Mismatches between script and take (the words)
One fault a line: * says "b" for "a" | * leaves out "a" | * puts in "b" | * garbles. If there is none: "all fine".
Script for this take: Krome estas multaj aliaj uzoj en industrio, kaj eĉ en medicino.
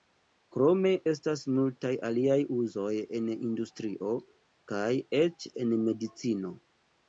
all fine